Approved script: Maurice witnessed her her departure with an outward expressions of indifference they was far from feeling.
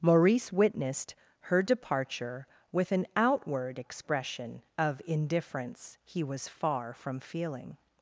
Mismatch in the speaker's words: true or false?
true